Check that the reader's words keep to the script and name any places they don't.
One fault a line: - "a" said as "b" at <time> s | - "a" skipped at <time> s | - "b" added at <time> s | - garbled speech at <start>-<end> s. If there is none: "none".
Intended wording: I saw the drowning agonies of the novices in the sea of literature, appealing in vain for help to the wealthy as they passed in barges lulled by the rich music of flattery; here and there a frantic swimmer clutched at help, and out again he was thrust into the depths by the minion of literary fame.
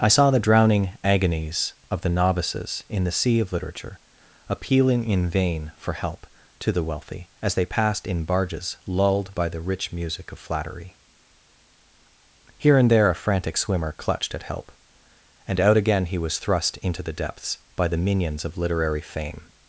- "minion" said as "minions" at 18.0 s